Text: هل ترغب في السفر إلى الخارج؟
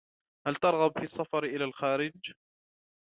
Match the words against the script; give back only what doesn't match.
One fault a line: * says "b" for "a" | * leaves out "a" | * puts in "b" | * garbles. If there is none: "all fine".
all fine